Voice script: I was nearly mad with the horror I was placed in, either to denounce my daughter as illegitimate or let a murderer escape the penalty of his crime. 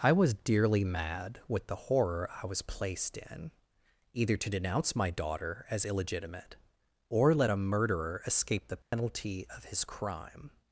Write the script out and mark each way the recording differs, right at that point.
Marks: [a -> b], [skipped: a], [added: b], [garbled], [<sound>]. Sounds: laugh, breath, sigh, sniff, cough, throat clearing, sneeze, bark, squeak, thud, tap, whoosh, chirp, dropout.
I was [nearly -> dearly] mad with the horror I was placed in, either to denounce my daughter as illegitimate or let a murderer escape the penalty [dropout] of his crime.